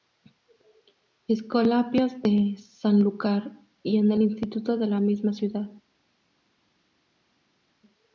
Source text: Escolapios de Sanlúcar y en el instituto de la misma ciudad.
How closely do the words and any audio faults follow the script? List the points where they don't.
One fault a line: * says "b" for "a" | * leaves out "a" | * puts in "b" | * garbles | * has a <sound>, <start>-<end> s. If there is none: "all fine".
all fine